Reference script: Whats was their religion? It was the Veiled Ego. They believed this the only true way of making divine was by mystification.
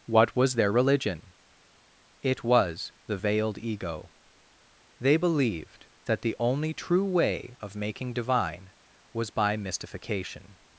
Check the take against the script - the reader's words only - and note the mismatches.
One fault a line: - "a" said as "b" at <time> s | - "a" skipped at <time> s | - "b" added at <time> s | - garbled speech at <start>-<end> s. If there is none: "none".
- "Whats" said as "What" at 0.1 s
- "this" said as "that" at 6.1 s